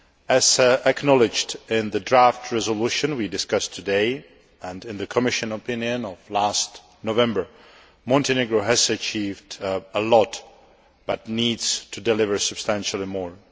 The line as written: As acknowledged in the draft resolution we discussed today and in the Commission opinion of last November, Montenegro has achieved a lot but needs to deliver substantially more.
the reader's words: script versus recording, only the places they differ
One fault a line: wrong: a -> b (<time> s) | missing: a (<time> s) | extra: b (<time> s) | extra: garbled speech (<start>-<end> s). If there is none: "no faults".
no faults